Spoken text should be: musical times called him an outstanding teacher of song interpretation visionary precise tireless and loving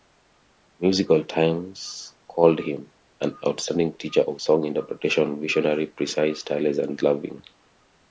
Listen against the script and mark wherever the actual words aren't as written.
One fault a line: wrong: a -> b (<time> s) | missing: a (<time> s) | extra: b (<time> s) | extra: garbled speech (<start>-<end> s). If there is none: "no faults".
no faults